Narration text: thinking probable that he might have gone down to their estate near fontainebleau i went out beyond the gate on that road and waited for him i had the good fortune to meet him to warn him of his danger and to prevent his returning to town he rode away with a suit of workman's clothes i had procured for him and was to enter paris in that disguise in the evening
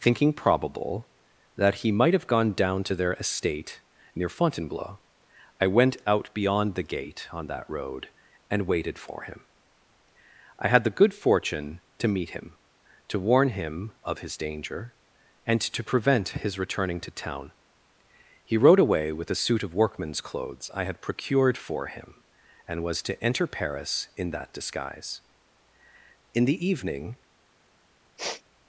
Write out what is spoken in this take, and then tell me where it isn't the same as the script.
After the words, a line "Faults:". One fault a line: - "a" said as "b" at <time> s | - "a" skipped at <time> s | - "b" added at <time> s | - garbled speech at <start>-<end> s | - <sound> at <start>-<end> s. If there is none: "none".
thinking probable that he might have gone down to their estate near fontainebleau i went out beyond the gate on that road and waited for him i had the good fortune to meet him to warn him of his danger and to prevent his returning to town he rode away with a suit of workman's clothes i had procured for him and was to enter paris in that disguise in the evening
Faults:
- sniff at 28.2-28.4 s